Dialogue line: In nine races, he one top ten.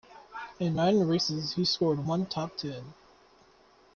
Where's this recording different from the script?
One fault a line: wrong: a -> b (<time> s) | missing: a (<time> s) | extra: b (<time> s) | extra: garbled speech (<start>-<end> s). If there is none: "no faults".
extra: scored (1.6 s)